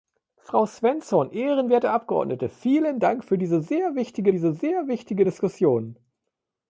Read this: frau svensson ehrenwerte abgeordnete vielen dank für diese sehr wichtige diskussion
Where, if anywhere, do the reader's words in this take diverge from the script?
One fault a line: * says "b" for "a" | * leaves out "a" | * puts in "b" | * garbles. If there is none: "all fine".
* puts in "diese sehr wichtige"